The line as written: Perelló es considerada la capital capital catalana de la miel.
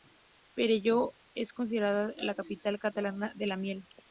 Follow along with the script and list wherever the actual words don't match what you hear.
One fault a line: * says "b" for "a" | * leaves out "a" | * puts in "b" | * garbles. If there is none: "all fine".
* leaves out "capital"